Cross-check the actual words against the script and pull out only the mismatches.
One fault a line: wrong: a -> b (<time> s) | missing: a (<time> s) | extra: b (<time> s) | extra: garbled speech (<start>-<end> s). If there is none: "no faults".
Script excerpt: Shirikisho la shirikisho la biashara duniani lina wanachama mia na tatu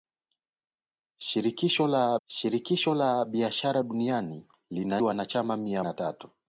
no faults